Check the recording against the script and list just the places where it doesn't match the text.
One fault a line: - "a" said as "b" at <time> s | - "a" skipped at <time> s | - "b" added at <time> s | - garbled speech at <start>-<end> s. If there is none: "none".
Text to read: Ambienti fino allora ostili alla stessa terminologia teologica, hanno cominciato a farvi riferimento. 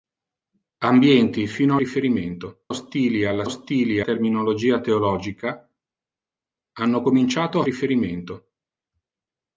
- "allora" said as "riferimento" at 1.8 s
- "stessa" said as "ostili" at 3.4 s
- "farvi" skipped at 7.7 s